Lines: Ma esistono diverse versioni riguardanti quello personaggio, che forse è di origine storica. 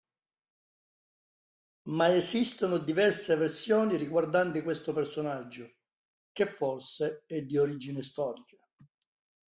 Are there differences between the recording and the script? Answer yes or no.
yes